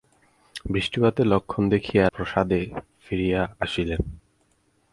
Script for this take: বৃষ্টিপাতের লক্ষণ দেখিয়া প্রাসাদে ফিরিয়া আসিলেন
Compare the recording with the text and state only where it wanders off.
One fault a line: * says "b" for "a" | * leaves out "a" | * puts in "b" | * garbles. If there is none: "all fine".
all fine